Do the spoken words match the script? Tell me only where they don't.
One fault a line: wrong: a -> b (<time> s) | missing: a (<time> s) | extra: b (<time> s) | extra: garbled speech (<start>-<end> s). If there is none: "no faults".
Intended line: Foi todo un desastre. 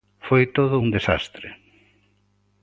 no faults